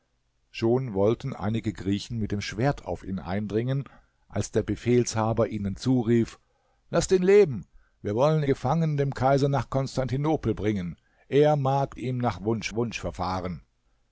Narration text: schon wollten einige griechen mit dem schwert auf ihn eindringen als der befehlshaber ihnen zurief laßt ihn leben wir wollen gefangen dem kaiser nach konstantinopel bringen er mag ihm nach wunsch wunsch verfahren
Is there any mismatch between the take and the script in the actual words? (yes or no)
no